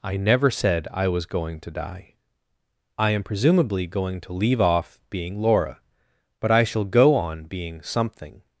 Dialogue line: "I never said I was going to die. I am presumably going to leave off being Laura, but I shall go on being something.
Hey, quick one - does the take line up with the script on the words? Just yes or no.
yes